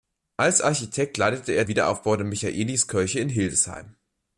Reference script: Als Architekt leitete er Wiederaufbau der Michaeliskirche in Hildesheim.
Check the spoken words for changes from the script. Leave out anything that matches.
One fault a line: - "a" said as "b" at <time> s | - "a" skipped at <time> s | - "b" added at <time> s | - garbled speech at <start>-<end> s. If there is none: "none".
none